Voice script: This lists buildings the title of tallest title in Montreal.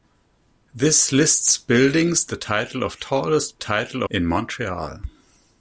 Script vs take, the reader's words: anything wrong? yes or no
no